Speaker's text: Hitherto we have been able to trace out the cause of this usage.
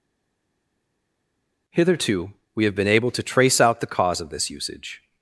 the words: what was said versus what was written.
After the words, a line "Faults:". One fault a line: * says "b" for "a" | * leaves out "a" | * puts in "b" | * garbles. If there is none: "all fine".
Hitherto we have been able to trace out the cause of this usage.
Faults:
all fine